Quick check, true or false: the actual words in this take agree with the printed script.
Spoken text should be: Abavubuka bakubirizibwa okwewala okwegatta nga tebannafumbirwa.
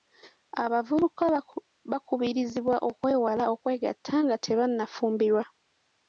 true